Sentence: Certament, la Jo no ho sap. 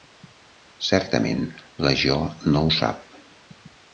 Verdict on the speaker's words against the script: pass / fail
pass